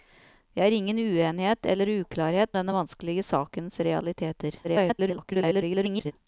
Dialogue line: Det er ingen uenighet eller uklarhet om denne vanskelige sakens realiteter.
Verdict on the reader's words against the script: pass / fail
fail